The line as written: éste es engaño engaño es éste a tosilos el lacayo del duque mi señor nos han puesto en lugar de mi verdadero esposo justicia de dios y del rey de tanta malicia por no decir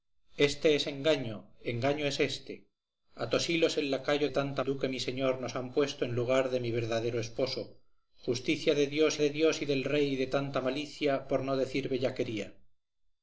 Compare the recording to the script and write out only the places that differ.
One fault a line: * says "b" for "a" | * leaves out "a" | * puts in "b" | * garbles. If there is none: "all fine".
* says "tanta" for "del"
* puts in "de dios"